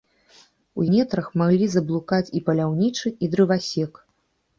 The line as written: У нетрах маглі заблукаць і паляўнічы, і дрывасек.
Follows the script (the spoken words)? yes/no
yes